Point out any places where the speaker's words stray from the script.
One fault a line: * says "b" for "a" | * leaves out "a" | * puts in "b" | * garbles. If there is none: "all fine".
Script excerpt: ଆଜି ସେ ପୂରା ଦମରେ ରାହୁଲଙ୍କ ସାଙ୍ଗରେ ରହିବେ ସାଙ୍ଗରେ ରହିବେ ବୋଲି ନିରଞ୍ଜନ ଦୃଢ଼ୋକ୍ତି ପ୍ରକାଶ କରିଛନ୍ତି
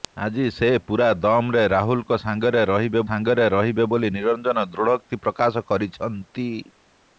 all fine